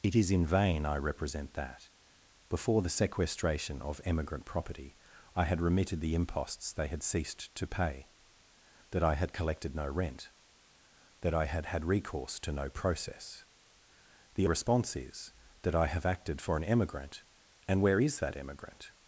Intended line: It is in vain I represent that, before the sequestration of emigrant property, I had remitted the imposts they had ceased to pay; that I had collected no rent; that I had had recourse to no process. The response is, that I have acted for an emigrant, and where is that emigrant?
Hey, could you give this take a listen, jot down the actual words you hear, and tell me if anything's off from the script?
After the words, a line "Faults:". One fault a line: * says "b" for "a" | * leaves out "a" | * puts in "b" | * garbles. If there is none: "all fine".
It is in vain I represent that, before the sequestration of emigrant property, I had remitted the imposts they had ceased to pay; that I had collected no rent; that I had had recourse to no process. The response is, that I have acted for an emigrant, and where is that emigrant?
Faults:
all fine